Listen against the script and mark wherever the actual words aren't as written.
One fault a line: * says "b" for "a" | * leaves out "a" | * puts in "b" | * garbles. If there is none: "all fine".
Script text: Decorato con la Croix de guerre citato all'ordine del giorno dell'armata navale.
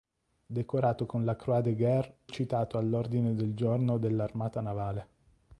all fine